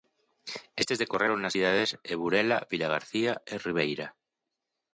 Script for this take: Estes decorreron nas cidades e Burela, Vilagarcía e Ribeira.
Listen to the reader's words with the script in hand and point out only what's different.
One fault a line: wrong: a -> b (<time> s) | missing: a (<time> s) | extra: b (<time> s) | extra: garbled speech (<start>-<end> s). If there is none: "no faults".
no faults